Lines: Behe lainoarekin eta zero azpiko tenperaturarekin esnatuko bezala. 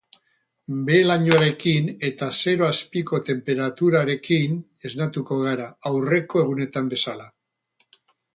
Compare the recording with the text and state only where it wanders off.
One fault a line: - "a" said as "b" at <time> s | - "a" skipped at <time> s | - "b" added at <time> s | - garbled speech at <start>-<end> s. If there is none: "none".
- "gara aurreko egunetan" added at 5.5 s